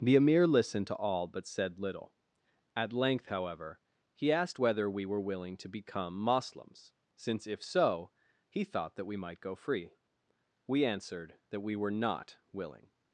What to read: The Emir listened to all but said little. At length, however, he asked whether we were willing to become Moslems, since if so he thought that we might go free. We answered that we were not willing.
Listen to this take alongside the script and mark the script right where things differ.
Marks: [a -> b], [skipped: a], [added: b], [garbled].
The Emir listened to all but said little. At length, however, he asked whether we were willing to become Moslems, since if so he thought that we might go free. We answered that we were not willing.